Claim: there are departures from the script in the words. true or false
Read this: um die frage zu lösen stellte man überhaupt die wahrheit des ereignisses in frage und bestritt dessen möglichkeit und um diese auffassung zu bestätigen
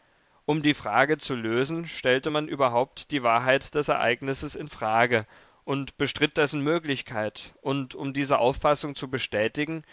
false